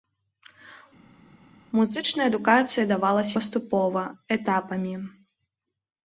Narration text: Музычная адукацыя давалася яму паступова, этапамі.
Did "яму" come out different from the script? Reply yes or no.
yes